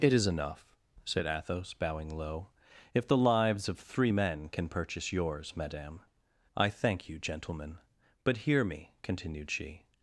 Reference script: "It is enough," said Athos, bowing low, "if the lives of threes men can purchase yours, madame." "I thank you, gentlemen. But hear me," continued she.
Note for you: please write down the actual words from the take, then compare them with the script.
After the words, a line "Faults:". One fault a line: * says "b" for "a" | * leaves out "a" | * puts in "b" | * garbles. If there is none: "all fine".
"It is enough," said Athos, bowing low, "if the lives of three men can purchase yours, madame." "I thank you, gentlemen. But hear me," continued she.
Faults:
* says "three" for "threes"